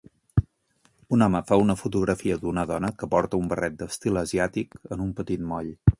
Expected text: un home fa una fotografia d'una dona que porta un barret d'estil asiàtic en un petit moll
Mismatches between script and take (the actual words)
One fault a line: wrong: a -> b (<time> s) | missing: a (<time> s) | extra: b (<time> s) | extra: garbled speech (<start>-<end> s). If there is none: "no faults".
no faults